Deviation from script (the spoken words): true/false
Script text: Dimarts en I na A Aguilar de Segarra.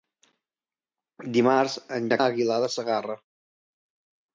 false